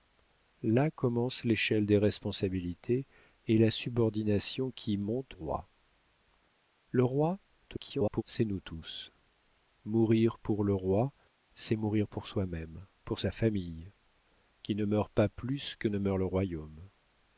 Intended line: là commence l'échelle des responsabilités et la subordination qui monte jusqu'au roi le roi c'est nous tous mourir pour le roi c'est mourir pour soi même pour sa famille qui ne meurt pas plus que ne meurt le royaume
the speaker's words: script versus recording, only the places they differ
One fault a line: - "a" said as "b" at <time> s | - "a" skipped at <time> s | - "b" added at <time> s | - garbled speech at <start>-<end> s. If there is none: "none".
- "jusqu'au" skipped at 5.4 s
- garbled speech at 7.7-8.2 s